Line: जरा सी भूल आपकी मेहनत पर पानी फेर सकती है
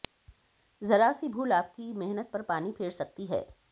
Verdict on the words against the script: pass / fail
pass